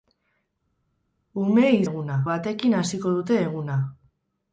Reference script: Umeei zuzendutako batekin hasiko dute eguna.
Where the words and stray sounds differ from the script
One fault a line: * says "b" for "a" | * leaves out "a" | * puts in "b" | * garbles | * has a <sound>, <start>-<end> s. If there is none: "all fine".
* says "eguna" for "zuzendutako"